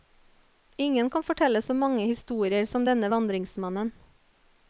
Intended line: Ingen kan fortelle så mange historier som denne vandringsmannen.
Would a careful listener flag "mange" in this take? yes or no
no